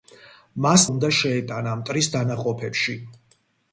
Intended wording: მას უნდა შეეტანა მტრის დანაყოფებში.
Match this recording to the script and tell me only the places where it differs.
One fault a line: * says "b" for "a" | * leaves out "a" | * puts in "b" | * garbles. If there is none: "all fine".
all fine